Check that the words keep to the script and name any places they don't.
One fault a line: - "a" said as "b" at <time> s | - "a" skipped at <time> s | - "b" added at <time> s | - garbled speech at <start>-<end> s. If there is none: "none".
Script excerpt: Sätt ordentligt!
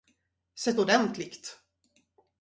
none